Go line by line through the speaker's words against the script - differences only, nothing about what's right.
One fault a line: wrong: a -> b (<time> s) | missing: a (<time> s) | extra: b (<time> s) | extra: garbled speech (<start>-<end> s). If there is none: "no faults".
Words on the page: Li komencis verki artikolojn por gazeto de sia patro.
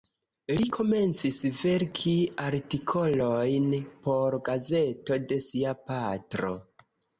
no faults